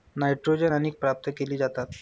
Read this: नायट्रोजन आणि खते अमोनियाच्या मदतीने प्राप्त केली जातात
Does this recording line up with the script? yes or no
no